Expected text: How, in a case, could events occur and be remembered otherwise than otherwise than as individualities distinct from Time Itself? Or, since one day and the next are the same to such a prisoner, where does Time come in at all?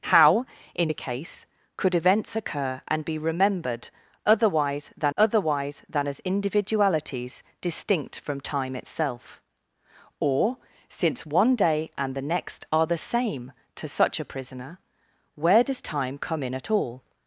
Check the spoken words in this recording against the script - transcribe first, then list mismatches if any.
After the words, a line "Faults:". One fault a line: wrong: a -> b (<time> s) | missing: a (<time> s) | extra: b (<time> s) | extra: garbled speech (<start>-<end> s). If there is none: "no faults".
How, in a case, could events occur and be remembered otherwise than otherwise than as individualities distinct from Time Itself? Or, since one day and the next are the same to such a prisoner, where does Time come in at all?
Faults:
no faults